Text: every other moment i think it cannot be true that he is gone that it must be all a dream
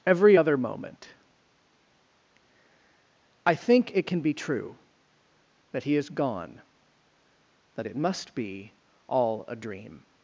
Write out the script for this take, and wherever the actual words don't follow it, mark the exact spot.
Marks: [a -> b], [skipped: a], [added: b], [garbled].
every other moment i think it [cannot -> can] be true that he is gone that it must be all a dream